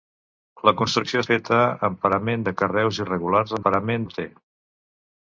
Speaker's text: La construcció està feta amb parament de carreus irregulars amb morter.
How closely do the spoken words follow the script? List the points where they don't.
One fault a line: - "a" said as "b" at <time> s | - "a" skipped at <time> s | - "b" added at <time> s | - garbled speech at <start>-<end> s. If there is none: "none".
- "està" skipped at 1.2 s
- "amb" said as "parament" at 3.7 s